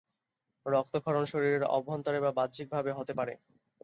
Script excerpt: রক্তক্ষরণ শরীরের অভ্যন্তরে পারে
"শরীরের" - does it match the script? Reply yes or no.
yes